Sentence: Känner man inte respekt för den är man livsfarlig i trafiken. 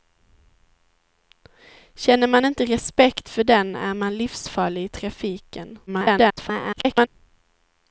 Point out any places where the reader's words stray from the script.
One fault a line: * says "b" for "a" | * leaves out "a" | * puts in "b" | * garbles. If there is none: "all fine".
* garbles